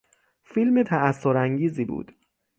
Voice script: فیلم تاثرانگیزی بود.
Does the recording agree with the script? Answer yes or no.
yes